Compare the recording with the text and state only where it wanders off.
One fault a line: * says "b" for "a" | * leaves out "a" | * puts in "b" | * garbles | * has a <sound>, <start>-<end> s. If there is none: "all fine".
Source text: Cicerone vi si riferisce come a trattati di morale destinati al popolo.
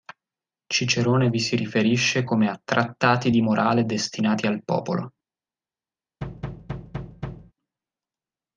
* has a thud, 6.2-7.5 s